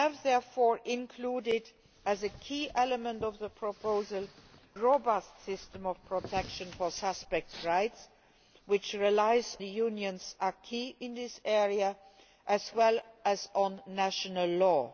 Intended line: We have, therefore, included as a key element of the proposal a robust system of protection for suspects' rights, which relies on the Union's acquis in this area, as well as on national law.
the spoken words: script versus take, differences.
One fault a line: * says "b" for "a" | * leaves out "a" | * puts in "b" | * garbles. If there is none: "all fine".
* leaves out "a"
* leaves out "on"